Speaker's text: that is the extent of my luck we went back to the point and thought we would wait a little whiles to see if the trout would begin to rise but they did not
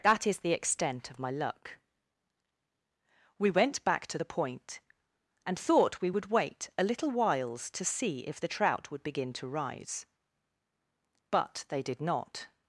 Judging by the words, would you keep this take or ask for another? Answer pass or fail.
pass